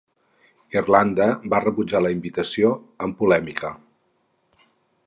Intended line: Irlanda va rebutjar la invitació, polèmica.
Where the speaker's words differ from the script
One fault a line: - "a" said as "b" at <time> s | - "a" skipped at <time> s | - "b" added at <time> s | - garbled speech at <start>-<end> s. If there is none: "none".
- "amb" added at 3.1 s